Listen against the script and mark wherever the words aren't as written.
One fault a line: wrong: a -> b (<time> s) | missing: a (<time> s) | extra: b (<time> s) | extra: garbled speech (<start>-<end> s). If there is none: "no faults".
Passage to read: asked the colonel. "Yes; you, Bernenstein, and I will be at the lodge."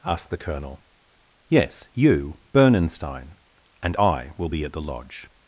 no faults